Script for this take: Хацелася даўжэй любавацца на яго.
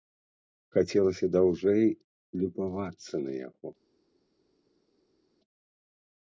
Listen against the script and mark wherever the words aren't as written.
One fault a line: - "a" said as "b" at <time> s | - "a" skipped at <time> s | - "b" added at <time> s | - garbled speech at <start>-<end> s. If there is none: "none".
none